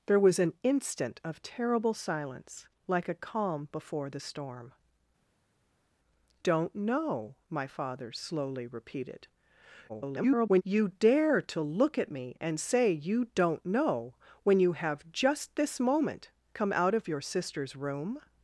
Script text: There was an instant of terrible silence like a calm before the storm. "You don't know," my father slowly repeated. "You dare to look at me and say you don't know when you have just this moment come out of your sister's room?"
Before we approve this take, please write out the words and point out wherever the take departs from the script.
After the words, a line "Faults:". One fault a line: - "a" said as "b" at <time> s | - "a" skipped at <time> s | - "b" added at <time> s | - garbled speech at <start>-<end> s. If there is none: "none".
There was an instant of terrible silence like a calm before the storm. "Don't know," my father slowly repeated. [garbled] "You dare to look at me and say you don't know when you have just this moment come out of your sister's room?"
Faults:
- "You" skipped at 4.7 s
- garbled speech at 9.9-10.6 s